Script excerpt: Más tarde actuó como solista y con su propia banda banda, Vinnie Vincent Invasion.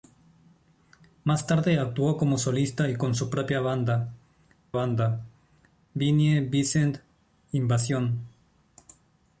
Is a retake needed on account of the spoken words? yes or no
no